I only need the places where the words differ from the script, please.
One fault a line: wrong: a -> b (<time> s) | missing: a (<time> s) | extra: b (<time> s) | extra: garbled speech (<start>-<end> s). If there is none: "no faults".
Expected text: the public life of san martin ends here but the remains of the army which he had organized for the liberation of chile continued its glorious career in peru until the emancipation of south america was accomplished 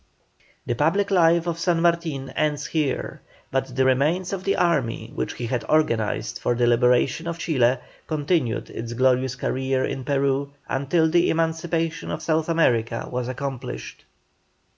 no faults